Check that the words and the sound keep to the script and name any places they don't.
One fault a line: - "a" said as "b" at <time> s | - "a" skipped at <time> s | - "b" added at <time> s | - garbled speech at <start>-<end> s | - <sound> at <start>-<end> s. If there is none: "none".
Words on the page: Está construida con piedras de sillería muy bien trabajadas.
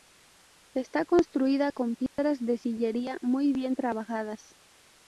- dropout at 2.1-2.2 s